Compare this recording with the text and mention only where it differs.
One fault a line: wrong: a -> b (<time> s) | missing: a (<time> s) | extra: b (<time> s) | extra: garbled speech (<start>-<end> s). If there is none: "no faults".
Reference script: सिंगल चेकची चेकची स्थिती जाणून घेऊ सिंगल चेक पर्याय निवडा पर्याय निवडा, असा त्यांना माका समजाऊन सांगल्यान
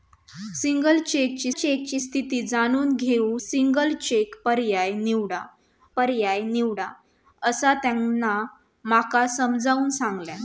no faults